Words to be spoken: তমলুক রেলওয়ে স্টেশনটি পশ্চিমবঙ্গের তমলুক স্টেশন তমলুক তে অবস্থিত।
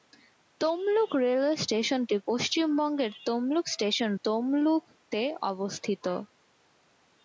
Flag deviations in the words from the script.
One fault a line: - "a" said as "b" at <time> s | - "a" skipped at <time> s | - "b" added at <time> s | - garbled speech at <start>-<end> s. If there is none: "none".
none